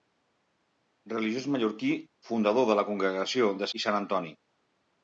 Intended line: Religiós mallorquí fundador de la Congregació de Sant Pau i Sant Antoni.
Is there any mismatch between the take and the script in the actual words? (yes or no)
yes